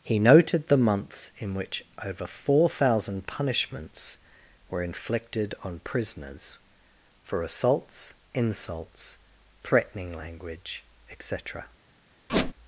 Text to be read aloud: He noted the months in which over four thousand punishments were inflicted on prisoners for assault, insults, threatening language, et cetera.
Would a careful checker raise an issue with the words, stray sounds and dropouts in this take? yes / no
yes